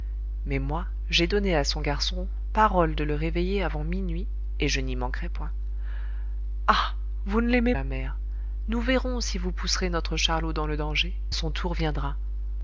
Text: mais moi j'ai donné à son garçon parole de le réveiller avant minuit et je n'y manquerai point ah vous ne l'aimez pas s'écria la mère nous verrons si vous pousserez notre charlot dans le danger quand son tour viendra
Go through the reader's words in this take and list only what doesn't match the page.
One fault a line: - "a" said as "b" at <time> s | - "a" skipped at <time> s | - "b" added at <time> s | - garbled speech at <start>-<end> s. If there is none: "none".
- "pas s'écria" skipped at 7.8 s
- "quand" skipped at 11.2 s